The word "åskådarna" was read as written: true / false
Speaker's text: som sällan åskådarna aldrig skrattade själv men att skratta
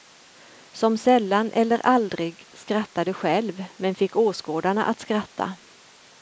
false